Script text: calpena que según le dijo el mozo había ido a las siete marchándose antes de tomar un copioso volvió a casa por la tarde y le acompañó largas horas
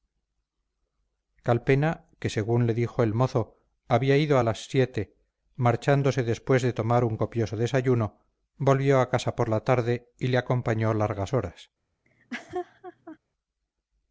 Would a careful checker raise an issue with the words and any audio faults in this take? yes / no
yes